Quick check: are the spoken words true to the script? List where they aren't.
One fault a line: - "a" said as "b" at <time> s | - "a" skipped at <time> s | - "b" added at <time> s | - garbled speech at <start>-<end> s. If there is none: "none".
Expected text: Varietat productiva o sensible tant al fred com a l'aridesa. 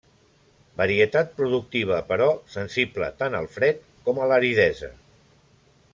- "o" said as "però" at 2.1 s